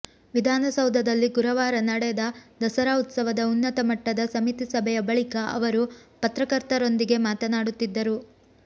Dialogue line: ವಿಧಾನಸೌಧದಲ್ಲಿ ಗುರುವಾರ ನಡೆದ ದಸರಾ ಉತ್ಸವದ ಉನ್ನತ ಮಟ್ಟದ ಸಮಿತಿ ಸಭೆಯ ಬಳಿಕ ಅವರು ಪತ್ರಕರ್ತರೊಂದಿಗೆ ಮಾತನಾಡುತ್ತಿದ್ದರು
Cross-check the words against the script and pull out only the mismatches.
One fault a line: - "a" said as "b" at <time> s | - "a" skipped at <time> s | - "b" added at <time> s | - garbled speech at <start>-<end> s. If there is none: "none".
none